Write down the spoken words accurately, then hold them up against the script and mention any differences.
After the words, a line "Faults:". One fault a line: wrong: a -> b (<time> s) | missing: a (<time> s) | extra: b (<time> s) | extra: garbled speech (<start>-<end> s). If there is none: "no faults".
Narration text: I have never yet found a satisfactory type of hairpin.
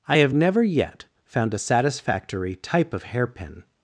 I have never yet found a satisfactory type of hairpin.
Faults:
no faults